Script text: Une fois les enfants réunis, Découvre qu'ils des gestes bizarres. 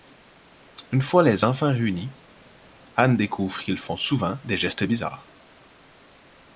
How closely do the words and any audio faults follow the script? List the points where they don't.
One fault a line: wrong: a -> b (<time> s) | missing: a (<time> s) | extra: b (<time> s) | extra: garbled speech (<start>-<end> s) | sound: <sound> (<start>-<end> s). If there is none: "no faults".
extra: Anne (2.9 s)
extra: font souvent (3.8 s)